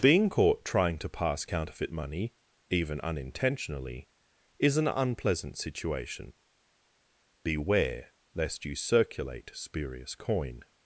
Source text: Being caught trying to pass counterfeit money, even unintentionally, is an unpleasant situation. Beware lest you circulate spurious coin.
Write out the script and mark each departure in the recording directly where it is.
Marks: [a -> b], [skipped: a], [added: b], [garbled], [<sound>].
Being caught trying to pass counterfeit money, even unintentionally, is an unpleasant situation. Beware lest you circulate spurious coin.